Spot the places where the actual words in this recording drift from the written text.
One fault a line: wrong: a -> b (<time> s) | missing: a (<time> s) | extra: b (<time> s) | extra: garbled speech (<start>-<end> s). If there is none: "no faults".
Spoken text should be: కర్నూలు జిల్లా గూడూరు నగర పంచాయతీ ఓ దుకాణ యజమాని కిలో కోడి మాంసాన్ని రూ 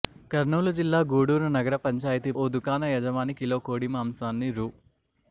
no faults